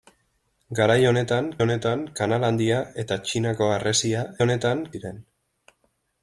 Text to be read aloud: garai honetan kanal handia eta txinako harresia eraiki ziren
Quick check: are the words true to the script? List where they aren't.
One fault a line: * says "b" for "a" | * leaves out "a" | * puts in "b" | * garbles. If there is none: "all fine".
* puts in "honetan"
* says "honetan" for "eraiki"